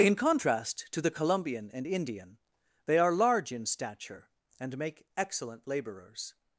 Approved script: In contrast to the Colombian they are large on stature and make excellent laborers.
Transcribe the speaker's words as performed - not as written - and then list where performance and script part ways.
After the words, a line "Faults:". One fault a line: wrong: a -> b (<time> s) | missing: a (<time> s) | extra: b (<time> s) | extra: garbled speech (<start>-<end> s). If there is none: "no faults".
In contrast to the Colombian and Indian they are large in stature and make excellent laborers.
Faults:
extra: and Indian (1.7 s)
wrong: on -> in (3.5 s)